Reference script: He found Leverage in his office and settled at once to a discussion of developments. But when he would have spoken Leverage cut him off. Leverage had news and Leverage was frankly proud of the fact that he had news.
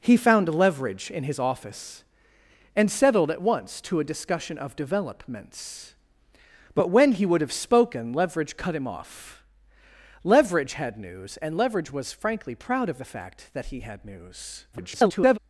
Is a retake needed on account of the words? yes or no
yes